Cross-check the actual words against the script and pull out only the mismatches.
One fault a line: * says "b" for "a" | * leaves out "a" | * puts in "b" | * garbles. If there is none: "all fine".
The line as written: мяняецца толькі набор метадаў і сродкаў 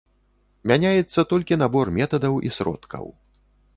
all fine